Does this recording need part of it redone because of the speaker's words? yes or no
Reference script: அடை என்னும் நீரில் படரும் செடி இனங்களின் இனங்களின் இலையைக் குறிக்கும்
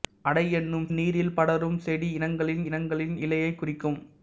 no